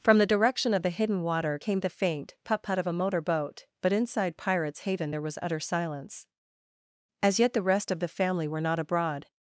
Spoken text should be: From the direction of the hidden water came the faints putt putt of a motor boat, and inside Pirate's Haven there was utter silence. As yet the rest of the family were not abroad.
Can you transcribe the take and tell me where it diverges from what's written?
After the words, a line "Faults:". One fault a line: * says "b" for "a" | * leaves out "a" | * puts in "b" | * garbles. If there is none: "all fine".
From the direction of the hidden water came the faint putt putt of a motor boat, but inside Pirate's Haven there was utter silence. As yet the rest of the family were not abroad.
Faults:
* says "faint" for "faints"
* says "but" for "and"